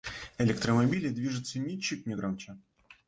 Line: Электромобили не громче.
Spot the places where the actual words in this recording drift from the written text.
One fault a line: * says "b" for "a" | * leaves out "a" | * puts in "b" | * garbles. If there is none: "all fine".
* puts in "движутся ничуть"